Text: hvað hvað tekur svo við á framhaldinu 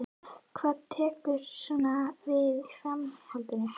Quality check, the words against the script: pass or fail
fail